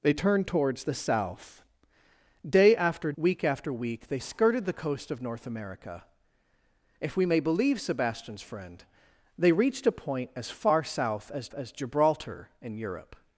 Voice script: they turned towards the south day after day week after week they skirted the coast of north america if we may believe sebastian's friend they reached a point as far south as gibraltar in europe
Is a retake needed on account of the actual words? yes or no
yes